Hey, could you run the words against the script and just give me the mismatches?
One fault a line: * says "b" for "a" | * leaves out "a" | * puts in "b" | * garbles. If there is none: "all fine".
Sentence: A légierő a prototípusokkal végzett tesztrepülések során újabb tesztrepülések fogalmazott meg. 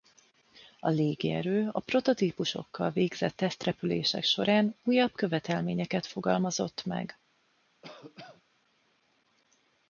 * says "követelményeket" for "tesztrepülések"